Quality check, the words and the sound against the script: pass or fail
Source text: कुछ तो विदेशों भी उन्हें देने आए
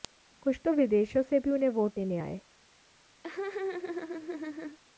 fail